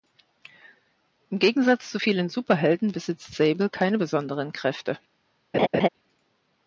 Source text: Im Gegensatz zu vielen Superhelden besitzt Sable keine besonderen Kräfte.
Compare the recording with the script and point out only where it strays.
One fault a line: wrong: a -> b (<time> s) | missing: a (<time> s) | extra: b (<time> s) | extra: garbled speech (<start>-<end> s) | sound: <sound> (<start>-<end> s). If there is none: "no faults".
sound: laugh (5.5-5.9 s)